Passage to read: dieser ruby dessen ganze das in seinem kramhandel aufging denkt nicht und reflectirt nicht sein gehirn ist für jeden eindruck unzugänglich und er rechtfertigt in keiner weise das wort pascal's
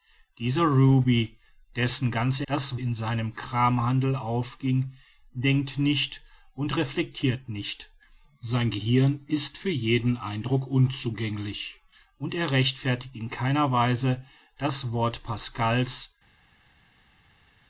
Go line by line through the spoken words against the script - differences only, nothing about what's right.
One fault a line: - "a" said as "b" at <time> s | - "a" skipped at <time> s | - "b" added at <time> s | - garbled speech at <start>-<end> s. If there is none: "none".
none